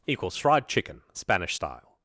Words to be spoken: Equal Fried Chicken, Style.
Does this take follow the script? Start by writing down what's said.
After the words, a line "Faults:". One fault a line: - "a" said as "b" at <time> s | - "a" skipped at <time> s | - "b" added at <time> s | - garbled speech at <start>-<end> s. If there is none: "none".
Equals Fried Chicken, Spanish Style.
Faults:
- "Equal" said as "Equals" at 0.1 s
- "Spanish" added at 1.1 s